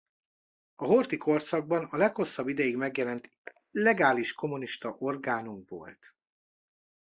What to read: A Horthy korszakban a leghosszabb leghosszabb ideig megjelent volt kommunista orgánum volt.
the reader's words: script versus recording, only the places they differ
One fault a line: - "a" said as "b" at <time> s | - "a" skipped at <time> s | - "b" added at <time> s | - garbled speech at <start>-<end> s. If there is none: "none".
- "leghosszabb" skipped at 2.5 s
- "volt" said as "legális" at 3.7 s